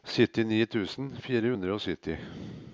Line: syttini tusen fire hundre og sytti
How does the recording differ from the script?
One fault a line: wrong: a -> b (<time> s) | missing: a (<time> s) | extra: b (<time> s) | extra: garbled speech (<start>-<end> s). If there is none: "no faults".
no faults